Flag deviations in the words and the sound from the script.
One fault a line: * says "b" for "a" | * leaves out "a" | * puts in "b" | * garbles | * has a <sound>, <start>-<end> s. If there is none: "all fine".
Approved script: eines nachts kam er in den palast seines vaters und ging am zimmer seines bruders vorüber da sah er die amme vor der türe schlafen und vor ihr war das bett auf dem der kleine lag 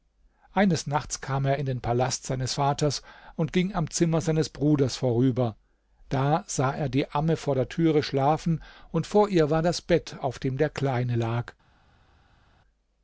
all fine